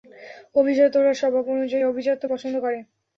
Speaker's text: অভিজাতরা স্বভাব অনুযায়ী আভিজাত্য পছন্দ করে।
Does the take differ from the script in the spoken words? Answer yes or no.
no